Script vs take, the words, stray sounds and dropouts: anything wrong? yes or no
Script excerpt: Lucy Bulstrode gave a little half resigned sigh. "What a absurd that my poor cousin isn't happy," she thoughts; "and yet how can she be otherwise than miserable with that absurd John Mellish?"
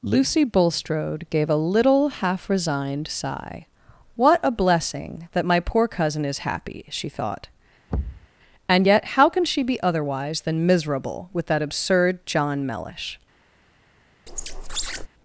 yes